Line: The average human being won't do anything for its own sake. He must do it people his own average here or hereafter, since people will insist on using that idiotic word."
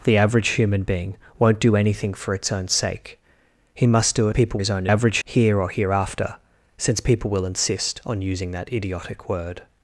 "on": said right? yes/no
yes